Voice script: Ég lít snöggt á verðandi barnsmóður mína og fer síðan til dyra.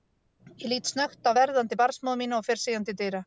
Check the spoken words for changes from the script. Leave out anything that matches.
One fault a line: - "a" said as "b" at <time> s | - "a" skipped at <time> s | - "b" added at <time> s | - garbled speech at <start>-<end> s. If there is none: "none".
none